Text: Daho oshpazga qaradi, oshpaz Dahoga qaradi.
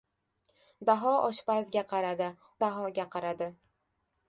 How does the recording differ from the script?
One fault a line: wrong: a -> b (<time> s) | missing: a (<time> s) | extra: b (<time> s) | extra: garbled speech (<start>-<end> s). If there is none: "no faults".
missing: oshpaz (2.3 s)